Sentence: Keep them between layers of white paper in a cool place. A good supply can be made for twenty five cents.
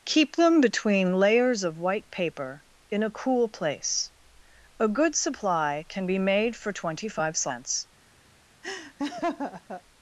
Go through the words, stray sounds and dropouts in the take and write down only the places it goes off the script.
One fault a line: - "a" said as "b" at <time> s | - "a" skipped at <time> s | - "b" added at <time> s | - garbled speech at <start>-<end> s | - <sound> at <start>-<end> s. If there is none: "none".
- laugh at 8.6-9.8 s